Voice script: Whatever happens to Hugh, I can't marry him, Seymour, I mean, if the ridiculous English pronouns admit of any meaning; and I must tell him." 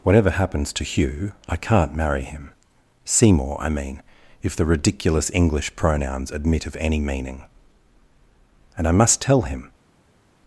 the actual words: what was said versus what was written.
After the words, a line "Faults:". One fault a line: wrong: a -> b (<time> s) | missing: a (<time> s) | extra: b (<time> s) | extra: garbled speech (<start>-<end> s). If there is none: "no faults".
Whatever happens to Hugh, I can't marry him, Seymour, I mean, if the ridiculous English pronouns admit of any meaning; and I must tell him."
Faults:
no faults